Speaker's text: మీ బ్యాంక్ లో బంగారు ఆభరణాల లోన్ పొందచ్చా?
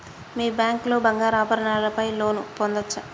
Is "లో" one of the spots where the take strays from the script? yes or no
no